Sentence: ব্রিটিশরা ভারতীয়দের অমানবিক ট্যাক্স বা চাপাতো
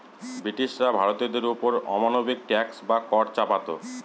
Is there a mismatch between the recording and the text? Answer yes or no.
yes